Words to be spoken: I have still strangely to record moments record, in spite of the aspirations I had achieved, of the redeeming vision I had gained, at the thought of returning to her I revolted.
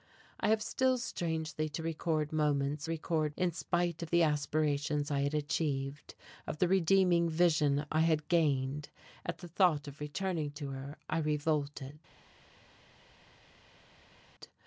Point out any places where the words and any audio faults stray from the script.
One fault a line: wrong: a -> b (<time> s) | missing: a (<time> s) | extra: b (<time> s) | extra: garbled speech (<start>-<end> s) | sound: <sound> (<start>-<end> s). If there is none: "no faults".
no faults